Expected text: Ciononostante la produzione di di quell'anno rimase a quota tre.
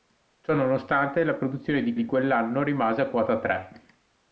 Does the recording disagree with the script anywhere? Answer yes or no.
no